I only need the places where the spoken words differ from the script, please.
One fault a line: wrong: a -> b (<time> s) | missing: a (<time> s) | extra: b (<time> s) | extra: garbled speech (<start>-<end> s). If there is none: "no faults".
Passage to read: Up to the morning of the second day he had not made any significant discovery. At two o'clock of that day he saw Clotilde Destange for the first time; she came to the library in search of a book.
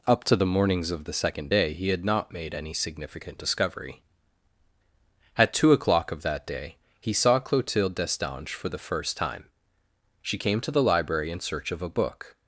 wrong: morning -> mornings (0.5 s)